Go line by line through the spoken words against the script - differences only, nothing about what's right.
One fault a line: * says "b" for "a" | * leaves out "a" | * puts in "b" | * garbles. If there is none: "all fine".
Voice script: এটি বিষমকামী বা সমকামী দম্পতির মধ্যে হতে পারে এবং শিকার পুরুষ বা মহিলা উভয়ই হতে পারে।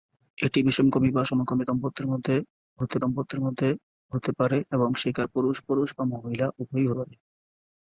* puts in "দম্পতির মধ্যে হতে"
* puts in "পুরুষ"
* leaves out "হতে"